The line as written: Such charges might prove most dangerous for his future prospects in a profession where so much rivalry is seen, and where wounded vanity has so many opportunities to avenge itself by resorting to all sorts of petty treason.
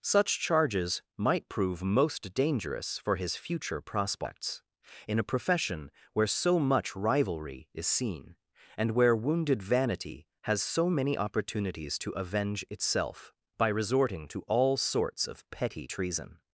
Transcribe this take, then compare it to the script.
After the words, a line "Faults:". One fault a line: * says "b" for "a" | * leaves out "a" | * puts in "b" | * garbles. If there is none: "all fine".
Such charges might prove most dangerous for his future prospects in a profession where so much rivalry is seen, and where wounded vanity has so many opportunities to avenge itself by resorting to all sorts of petty treason.
Faults:
all fine